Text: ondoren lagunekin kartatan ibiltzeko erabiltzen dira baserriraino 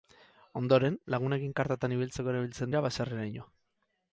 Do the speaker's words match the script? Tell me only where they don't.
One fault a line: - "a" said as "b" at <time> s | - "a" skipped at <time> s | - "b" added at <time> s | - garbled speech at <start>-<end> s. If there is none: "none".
none